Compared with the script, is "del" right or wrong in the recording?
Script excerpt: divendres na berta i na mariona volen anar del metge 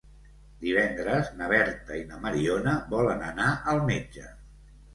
wrong